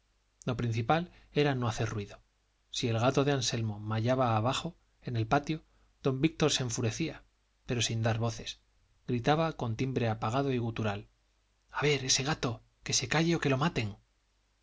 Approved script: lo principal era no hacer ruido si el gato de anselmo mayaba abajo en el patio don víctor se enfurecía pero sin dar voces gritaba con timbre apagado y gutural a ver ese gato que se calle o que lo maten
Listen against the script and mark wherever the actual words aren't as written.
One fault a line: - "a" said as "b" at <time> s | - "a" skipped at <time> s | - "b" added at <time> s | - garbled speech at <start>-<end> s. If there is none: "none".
none